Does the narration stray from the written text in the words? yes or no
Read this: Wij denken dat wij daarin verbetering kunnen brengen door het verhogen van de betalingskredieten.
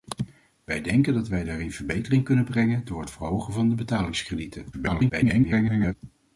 yes